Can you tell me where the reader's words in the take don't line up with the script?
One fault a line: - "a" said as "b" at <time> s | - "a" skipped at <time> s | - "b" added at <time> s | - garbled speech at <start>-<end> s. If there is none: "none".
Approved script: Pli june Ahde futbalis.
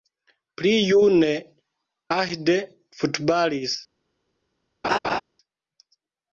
none